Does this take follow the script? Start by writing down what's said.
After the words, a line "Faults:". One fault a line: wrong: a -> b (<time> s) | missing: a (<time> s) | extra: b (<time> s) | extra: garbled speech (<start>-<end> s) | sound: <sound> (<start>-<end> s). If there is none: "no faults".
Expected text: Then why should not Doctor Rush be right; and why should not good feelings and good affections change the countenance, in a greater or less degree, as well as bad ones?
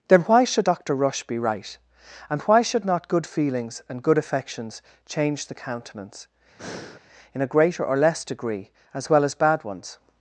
Then why should Doctor Rush be right; and why should not good feelings and good affections change the countenance, in a greater or less degree, as well as bad ones?
Faults:
missing: not (0.7 s)
sound: breath (6.6-7.0 s)